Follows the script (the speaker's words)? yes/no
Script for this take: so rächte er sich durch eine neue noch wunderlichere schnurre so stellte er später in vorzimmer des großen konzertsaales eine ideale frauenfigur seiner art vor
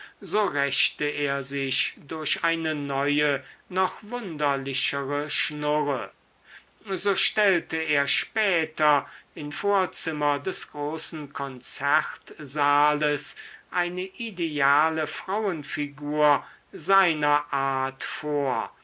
yes